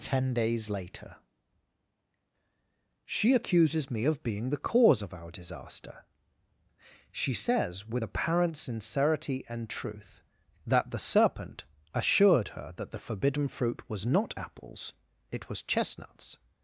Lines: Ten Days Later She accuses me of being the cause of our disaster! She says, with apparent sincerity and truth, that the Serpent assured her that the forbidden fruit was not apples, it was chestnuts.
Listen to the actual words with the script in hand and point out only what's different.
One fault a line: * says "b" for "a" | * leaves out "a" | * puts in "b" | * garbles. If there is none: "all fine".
all fine